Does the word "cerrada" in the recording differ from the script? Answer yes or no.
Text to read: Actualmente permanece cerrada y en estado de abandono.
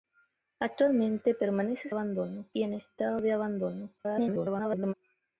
yes